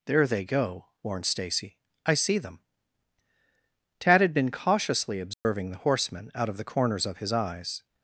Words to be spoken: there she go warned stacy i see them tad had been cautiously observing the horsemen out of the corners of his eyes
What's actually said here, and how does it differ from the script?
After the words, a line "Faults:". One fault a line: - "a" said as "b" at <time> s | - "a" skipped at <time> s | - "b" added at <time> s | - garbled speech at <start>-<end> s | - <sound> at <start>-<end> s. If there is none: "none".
there they go warned stacy i see them tad had been cautiously observing the horsemen out of the corners of his eyes
Faults:
- "she" said as "they" at 0.2 s
- dropout at 5.3-5.5 s